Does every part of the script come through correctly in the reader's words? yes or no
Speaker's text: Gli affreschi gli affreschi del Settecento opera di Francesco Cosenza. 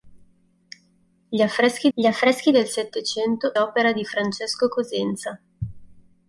yes